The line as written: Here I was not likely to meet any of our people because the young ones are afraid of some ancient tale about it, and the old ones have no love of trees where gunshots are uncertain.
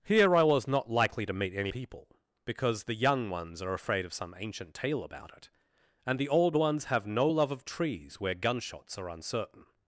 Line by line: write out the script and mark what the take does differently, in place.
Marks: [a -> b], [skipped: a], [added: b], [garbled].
Here I was not likely to meet any [skipped: of our] people because the young ones are afraid of some ancient tale about it, and the old ones have no love of trees where gunshots are uncertain.